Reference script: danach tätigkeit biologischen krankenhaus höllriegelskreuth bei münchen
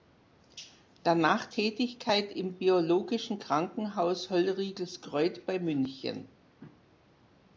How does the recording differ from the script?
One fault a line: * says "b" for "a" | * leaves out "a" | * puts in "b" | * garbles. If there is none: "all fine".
* puts in "im"